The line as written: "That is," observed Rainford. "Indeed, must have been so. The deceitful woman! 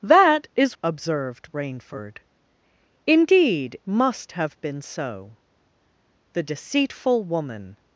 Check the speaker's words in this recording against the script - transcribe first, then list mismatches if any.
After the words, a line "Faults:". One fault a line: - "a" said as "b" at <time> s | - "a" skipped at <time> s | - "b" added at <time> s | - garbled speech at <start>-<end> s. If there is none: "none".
"That is," observed Rainford. "Indeed, must have been so. The deceitful woman!
Faults:
none